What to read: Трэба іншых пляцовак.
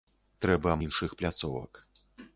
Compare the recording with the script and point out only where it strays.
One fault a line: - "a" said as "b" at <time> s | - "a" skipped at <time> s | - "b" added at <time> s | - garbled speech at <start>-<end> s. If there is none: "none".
none